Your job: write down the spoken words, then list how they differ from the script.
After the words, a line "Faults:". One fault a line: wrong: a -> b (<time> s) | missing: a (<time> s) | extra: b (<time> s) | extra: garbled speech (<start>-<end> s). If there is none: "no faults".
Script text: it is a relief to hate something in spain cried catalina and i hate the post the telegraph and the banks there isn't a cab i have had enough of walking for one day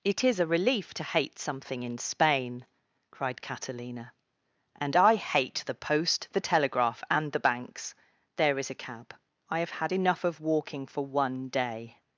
it is a relief to hate something in spain cried catalina and i hate the post the telegraph and the banks there is a cab i have had enough of walking for one day
Faults:
wrong: isn't -> is (8.6 s)